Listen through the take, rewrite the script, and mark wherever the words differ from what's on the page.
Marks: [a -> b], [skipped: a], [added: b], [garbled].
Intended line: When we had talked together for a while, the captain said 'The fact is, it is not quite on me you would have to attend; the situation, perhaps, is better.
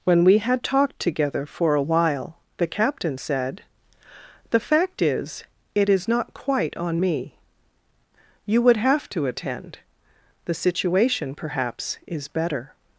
When we had talked together for a while, the captain said 'The fact is, it is not quite on me you would have to attend; the situation, perhaps, is better.